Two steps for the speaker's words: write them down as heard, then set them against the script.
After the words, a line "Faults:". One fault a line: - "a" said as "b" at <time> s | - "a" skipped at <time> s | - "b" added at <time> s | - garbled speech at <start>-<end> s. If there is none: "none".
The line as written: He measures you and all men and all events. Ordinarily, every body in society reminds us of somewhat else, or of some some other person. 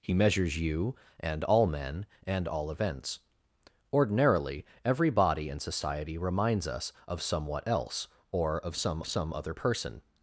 He measures you and all men and all events. Ordinarily, every body in society reminds us of somewhat else, or of some some other person.
Faults:
none